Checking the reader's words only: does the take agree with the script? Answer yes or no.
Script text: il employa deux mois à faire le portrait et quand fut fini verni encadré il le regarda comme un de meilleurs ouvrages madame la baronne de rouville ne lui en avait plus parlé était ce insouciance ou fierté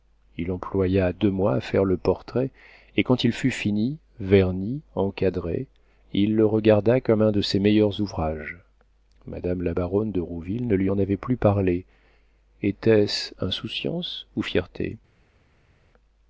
no